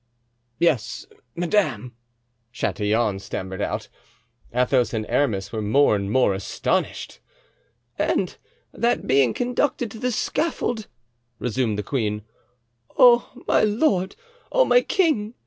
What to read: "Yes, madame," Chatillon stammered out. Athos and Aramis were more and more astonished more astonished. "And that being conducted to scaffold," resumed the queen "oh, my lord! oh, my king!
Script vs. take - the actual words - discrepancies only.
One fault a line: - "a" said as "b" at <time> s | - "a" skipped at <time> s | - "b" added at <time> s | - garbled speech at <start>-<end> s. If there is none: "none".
- "more astonished" skipped at 7.2 s
- "the" added at 10.0 s